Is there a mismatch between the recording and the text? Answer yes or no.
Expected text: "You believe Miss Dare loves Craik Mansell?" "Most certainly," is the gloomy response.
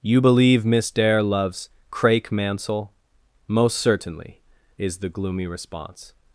no